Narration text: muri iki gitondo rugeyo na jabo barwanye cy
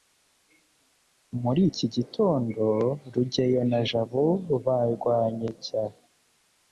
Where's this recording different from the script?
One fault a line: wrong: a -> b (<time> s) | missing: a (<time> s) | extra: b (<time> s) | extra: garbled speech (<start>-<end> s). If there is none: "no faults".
no faults